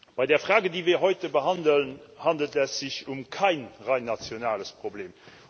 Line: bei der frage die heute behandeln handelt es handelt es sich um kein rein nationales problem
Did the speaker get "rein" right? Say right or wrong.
right